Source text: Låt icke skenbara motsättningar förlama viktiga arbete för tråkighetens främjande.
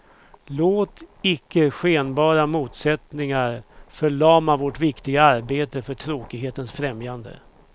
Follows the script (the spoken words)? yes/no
no